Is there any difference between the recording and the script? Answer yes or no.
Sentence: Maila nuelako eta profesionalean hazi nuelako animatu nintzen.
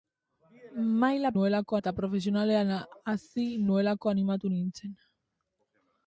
no